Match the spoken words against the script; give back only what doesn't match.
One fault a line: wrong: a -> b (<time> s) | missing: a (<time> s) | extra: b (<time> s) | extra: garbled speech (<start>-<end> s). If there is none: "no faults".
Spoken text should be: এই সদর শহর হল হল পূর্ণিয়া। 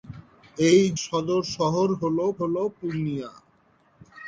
no faults